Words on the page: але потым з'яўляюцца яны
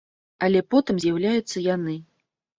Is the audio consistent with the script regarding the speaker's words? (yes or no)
yes